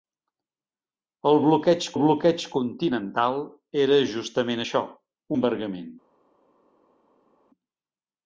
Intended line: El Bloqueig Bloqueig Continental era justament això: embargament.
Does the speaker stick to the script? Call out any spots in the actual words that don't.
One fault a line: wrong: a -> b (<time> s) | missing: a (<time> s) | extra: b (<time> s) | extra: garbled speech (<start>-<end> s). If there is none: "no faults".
no faults